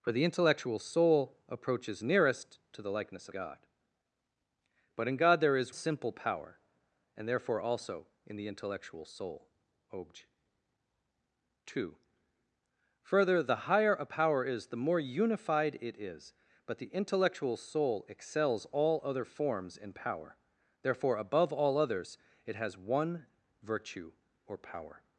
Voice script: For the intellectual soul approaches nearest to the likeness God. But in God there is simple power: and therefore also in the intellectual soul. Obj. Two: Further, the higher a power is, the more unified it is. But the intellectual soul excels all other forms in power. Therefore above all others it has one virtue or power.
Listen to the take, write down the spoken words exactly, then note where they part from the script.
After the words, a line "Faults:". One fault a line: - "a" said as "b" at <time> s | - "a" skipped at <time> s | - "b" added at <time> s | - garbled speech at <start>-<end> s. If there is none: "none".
For the intellectual soul approaches nearest to the likeness God. But in God there is simple power: and therefore also in the intellectual soul. Obj. Two: Further, the higher a power is, the more unified it is. But the intellectual soul excels all other forms in power. Therefore above all others it has one virtue or power.
Faults:
none